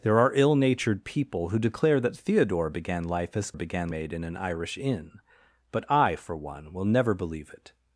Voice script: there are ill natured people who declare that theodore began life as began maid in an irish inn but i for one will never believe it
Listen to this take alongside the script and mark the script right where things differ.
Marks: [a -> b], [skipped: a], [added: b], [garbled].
there are ill natured people who declare that theodore began life as began maid in an irish inn but i for one will never believe it